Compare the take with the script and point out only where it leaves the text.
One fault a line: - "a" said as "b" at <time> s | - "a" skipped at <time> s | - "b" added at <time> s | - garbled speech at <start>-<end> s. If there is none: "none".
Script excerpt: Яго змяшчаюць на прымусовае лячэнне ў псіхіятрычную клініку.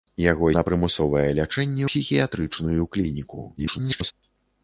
- "змяшчаюць" skipped at 0.5 s
- "ў" skipped at 1.9 s
- garbled speech at 3.6-4.1 s